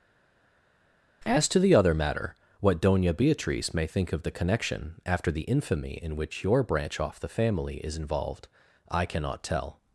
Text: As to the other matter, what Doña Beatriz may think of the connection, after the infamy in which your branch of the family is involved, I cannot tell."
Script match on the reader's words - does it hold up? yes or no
no